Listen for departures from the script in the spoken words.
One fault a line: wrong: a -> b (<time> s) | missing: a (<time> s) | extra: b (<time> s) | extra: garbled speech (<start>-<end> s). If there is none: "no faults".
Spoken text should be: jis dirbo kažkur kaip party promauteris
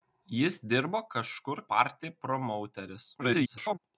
missing: kaip (1.6 s)
extra: garbled speech (3.2-3.8 s)